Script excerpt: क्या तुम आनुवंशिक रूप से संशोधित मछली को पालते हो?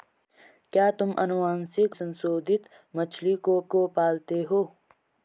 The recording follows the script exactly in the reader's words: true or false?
false